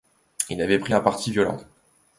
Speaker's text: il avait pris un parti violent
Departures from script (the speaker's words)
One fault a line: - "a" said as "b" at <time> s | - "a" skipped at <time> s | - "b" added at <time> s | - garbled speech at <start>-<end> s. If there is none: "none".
none